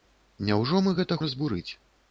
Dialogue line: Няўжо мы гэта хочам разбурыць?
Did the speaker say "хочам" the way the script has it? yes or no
no